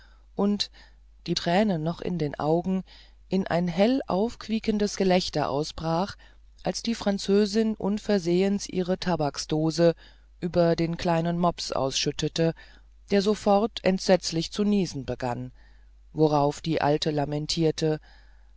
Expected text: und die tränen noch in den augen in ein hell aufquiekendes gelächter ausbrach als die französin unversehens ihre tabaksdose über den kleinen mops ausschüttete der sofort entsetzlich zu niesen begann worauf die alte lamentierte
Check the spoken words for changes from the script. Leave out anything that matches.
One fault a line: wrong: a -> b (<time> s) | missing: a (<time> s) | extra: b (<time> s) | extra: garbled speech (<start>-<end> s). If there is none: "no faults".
no faults